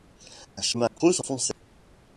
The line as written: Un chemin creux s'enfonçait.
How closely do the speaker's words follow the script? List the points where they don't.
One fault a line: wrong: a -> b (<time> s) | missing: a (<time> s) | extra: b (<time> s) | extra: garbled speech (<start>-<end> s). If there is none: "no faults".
no faults